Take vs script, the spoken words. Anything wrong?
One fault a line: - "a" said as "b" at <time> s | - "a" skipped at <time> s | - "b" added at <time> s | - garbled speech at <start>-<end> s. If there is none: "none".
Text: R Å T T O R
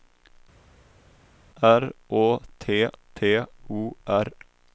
none